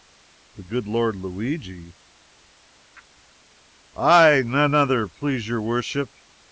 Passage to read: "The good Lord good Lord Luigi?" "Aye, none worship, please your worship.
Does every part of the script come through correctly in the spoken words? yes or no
no